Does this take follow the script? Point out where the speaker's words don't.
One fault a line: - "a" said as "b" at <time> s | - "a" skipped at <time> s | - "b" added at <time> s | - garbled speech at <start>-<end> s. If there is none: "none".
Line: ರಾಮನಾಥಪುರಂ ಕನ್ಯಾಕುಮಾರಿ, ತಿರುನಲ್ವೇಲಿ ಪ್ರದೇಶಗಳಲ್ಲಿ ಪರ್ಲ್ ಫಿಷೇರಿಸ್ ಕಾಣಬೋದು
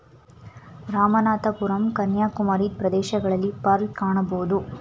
- "ತಿರುನಲ್ವೇಲಿ" skipped at 2.7 s
- "ಫಿಷೇರಿಸ್" skipped at 3.9 s